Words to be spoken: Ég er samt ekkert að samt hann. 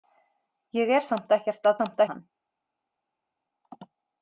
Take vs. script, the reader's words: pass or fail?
pass